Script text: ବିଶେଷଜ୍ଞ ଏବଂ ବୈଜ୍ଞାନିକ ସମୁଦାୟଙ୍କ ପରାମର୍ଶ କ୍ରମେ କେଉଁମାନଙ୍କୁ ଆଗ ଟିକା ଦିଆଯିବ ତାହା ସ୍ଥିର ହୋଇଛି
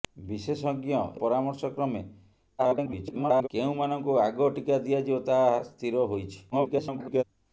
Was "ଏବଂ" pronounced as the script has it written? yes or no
no